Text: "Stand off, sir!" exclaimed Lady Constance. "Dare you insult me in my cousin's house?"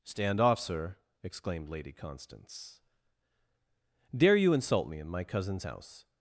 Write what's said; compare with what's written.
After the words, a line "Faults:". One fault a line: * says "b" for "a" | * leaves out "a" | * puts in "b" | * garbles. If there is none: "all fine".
"Stand off, sir!" exclaimed Lady Constance. "Dare you insult me in my cousin's house?"
Faults:
all fine